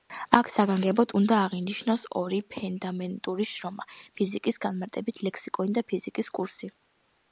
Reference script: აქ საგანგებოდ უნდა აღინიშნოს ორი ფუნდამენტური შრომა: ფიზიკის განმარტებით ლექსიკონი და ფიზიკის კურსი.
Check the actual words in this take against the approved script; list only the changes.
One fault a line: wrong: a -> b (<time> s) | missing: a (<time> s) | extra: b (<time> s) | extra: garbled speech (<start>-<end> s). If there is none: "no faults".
no faults